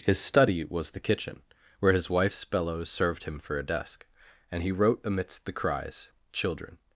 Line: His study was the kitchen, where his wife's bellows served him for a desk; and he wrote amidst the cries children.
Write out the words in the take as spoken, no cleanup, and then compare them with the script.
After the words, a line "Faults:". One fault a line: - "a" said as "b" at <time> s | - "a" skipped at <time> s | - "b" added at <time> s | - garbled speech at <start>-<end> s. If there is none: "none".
His study was the kitchen, where his wife's bellows served him for a desk; and he wrote amidst the cries children.
Faults:
none